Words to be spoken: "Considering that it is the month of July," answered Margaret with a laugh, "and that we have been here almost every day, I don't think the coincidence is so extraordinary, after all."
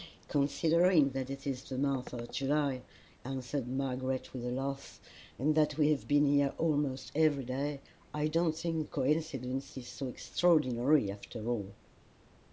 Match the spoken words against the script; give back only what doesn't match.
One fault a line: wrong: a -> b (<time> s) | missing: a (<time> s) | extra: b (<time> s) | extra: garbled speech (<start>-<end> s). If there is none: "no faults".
missing: the (8.9 s)